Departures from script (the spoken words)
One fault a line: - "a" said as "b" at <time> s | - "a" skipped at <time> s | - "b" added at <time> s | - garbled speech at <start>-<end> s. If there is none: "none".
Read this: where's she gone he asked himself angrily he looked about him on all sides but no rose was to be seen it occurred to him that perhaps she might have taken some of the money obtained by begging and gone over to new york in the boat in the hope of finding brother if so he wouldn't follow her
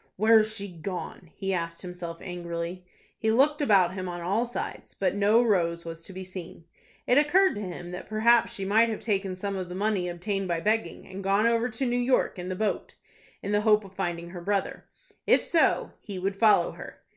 - "her" added at 14.3 s
- "wouldn't" said as "would" at 16.2 s